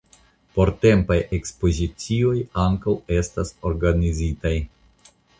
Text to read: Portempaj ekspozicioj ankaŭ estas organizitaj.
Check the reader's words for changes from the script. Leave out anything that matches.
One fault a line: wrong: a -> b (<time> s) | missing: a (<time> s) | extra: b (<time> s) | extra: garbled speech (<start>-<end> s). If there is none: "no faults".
no faults